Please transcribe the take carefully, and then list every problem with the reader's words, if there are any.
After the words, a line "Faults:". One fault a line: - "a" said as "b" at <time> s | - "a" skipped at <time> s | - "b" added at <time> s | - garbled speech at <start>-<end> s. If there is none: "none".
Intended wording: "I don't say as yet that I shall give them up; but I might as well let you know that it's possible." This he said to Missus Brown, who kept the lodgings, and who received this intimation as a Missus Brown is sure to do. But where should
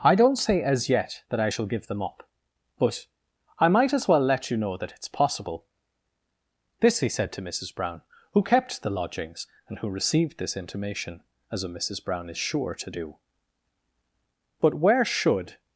"I don't say as yet that I shall give them up; but I might as well let you know that it's possible." This he said to Missus Brown, who kept the lodgings, and who received this intimation as a Missus Brown is sure to do. But where should
Faults:
none